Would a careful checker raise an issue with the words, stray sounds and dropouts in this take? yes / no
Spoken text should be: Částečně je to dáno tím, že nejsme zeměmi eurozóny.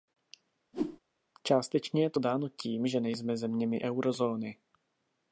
yes